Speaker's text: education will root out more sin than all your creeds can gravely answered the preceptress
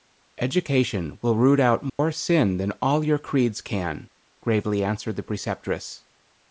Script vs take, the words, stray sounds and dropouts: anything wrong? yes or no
yes